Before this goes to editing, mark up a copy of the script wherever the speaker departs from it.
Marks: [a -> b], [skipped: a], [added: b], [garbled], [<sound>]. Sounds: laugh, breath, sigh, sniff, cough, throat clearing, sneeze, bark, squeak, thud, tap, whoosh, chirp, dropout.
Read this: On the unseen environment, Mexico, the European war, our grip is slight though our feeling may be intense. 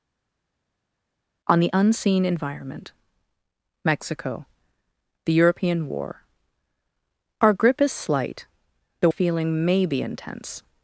On the unseen environment, Mexico, the European war, our grip is slight though [skipped: our] feeling may be intense.